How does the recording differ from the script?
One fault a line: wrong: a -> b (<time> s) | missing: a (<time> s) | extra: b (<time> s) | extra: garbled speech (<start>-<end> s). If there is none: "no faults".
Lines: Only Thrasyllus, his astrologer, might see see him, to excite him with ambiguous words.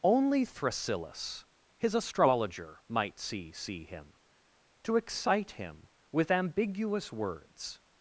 no faults